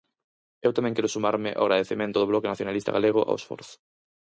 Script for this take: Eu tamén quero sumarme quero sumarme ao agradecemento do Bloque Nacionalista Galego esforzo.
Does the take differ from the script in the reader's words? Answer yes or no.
yes